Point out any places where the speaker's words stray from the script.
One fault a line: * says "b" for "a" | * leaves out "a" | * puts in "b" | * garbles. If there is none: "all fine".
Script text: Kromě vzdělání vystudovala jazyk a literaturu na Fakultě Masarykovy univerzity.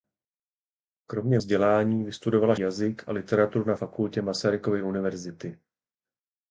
all fine